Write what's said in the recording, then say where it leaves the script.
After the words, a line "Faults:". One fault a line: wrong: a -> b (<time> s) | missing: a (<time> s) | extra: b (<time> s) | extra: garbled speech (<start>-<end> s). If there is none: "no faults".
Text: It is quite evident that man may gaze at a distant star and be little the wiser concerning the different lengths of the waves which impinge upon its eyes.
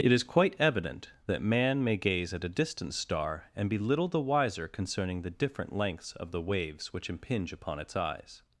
It is quite evident that man may gaze at a distant star and be little the wiser concerning the different lengths of the waves which impinge upon its eyes.
Faults:
no faults